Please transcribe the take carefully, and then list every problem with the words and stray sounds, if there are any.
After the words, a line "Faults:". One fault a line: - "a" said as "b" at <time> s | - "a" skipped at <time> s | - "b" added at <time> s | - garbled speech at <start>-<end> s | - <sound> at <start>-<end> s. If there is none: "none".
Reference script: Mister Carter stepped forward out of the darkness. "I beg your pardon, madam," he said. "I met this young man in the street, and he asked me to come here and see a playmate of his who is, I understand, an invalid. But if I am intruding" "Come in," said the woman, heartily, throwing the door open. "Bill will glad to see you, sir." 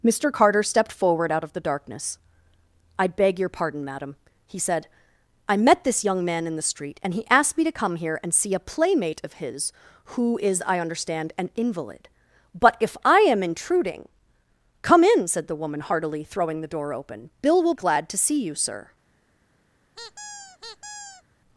Mister Carter stepped forward out of the darkness. "I beg your pardon, madam," he said. "I met this young man in the street, and he asked me to come here and see a playmate of his who is, I understand, an invalid. But if I am intruding" "Come in," said the woman, heartily, throwing the door open. "Bill will glad to see you, sir."
Faults:
- squeak at 19.9-21.2 s